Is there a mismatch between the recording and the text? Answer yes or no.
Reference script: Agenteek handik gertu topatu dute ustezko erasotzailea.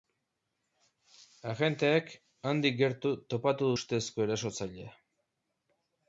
yes